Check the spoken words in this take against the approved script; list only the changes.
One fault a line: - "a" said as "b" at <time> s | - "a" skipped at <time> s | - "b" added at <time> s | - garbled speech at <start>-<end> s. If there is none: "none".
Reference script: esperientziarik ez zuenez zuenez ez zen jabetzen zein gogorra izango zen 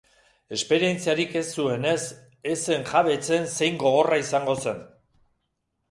- "zuenez" skipped at 2.0 s